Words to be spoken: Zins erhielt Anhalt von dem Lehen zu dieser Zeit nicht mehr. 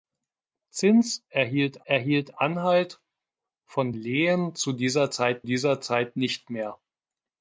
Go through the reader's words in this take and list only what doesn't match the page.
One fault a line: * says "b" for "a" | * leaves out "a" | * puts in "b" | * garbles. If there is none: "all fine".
* puts in "erhielt"
* leaves out "dem"
* puts in "dieser Zeit"